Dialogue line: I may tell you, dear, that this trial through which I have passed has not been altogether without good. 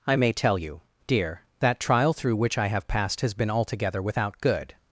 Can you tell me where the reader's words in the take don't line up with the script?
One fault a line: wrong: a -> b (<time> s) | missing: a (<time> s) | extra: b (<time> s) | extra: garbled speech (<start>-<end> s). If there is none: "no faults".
missing: this (1.8 s)
missing: not (3.3 s)